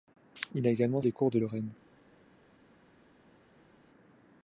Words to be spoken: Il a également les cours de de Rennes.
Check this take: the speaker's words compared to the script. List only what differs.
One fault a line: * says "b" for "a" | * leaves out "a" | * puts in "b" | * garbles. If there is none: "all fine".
all fine